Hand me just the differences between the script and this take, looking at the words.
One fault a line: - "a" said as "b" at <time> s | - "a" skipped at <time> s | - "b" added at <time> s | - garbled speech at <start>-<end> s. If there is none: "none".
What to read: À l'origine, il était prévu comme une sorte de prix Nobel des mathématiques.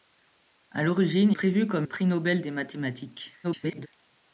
- "il était" skipped at 1.3 s
- "une sorte de" skipped at 1.9 s
- garbled speech at 3.4-3.9 s